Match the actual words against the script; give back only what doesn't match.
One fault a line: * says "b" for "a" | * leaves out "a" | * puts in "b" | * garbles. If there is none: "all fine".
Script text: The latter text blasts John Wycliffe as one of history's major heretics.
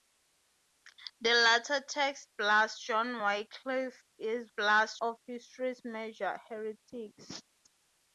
* says "blasts" for "one"